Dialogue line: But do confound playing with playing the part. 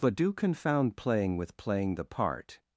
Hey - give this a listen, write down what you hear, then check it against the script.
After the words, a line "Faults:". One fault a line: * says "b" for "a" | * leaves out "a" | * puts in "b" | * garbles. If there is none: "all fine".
But do confound playing with playing the part.
Faults:
all fine